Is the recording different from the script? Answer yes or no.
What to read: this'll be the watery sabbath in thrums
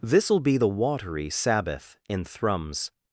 no